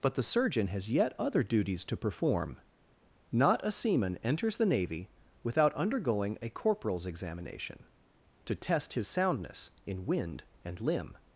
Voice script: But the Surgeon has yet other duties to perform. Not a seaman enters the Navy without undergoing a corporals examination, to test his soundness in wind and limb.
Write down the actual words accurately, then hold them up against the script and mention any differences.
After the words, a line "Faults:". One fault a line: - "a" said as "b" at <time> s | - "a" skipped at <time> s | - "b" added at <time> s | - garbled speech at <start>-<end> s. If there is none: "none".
But the Surgeon has yet other duties to perform. Not a seaman enters the Navy without undergoing a corporals examination, to test his soundness in wind and limb.
Faults:
none